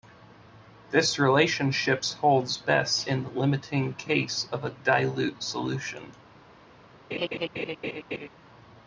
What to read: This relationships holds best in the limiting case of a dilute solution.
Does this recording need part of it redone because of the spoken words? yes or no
no